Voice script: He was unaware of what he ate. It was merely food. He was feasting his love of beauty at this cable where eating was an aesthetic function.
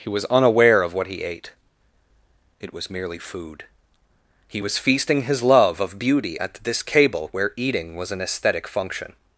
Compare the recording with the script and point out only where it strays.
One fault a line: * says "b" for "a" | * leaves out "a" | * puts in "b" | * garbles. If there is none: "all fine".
all fine